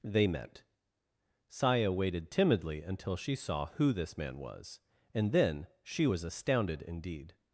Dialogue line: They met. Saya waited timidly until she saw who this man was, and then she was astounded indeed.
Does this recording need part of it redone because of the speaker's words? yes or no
no